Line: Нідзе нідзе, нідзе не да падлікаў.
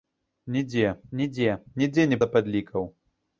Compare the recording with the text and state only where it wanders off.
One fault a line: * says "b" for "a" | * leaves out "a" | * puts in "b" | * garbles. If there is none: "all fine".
all fine